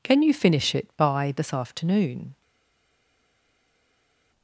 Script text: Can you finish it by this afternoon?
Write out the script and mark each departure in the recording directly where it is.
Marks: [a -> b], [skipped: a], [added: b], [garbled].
Can you finish it by this afternoon?